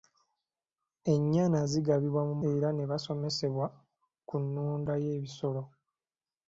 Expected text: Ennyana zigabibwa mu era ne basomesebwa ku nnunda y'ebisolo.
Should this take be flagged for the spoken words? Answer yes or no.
no